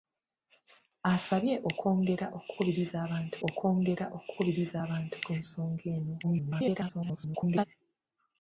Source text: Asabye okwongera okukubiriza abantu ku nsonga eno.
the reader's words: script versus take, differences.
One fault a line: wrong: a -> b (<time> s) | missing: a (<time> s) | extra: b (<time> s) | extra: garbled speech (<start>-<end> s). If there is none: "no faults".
extra: okwongera okukubiriza abantu (3.5 s)
extra: garbled speech (6.2-7.7 s)